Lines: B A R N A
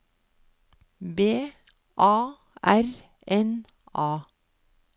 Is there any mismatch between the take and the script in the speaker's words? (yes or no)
no